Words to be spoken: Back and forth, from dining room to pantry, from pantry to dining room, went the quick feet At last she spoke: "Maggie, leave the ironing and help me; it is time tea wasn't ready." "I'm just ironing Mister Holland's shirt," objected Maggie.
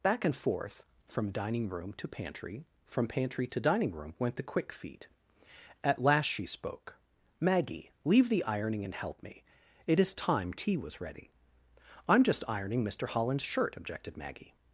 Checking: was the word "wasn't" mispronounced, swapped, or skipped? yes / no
yes